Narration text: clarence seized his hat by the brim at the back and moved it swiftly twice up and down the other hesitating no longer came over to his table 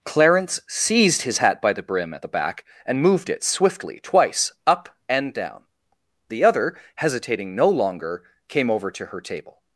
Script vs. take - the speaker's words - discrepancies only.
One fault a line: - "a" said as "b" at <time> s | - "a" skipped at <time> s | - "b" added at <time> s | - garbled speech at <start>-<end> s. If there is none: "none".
- "his" said as "her" at 9.1 s